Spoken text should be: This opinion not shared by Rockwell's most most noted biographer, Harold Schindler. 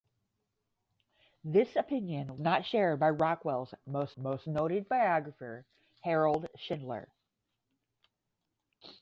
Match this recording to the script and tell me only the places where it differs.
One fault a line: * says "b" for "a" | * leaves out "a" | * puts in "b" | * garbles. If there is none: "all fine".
all fine